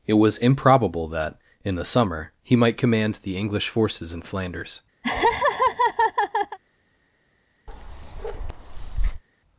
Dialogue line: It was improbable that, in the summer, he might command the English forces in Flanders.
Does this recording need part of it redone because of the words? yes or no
no